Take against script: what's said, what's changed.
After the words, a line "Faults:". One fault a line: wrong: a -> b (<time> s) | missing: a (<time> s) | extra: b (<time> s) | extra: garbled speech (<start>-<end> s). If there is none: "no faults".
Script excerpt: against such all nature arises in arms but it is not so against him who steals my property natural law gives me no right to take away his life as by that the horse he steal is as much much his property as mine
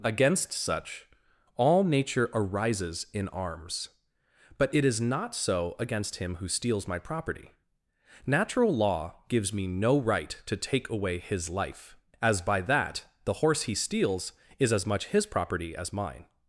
against such all nature arises in arms but it is not so against him who steals my property natural law gives me no right to take away his life as by that the horse he steals is as much his property as mine
Faults:
wrong: steal -> steals (13.7 s)
missing: much (15.1 s)